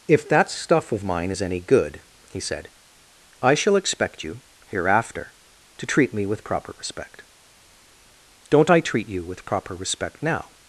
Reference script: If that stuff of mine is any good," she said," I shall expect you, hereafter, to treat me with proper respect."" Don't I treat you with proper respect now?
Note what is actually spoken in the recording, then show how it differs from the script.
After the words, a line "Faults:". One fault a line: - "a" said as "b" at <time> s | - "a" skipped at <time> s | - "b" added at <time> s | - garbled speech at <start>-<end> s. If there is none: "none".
If that stuff of mine is any good," he said," I shall expect you, hereafter, to treat me with proper respect."" Don't I treat you with proper respect now?
Faults:
- "she" said as "he" at 2.3 s